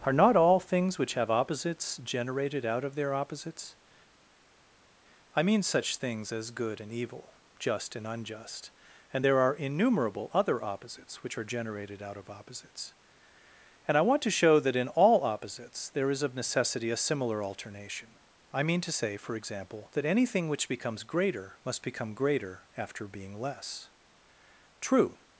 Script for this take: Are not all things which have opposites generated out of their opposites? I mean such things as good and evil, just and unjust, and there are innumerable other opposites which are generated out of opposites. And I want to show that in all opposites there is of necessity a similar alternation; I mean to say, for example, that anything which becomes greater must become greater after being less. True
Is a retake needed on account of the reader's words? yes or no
no